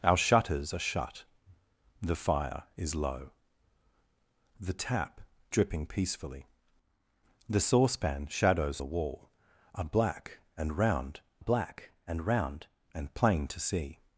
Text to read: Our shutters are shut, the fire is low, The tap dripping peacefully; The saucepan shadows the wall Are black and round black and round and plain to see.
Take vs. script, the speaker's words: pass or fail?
pass